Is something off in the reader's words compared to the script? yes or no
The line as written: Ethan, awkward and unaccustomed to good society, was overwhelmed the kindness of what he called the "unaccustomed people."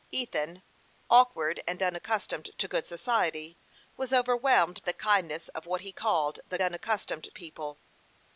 no